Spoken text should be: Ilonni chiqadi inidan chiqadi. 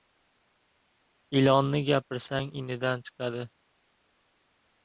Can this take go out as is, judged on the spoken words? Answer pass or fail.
fail